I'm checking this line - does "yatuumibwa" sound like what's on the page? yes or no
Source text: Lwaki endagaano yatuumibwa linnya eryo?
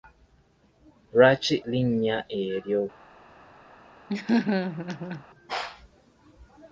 no